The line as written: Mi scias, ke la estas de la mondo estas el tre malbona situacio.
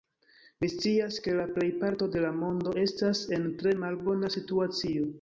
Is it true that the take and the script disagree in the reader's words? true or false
true